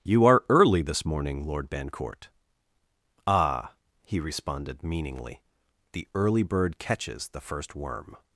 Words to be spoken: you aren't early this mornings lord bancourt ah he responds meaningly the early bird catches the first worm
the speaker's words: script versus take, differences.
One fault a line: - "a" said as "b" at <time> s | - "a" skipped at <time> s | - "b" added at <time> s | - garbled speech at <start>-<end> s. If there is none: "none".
- "aren't" said as "are" at 0.2 s
- "mornings" said as "morning" at 1.1 s
- "responds" said as "responded" at 4.2 s